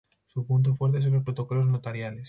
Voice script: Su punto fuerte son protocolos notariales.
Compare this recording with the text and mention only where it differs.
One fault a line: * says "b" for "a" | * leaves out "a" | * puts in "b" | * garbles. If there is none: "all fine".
* puts in "los"